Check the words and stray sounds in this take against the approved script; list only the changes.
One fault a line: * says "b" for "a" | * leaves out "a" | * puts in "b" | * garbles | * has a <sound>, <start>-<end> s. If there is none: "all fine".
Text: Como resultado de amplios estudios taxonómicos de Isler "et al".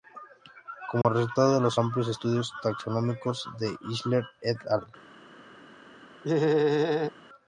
* has a dropout, 1.0-1.0 s
* puts in "los"
* has a laugh, 6.2-7.1 s